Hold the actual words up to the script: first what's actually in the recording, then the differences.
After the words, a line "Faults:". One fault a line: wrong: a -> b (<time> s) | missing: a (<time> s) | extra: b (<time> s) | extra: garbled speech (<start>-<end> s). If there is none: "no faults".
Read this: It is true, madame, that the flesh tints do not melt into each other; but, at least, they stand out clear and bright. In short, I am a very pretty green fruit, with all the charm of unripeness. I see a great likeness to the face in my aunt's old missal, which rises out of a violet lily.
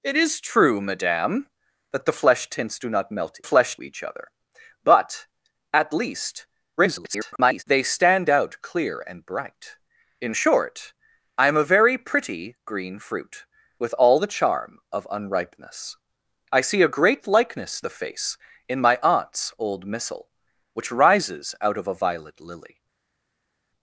It is true, madame, that the flesh tints do not melt flesh each other; but, at least, [garbled] they stand out clear and bright. In short, I am a very pretty green fruit, with all the charm of unripeness. I see a great likeness the face in my aunt's old missal, which rises out of a violet lily.
Faults:
wrong: into -> flesh (3.5 s)
extra: garbled speech (6.8-7.6 s)
missing: to (17.8 s)